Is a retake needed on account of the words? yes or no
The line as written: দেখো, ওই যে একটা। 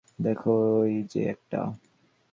no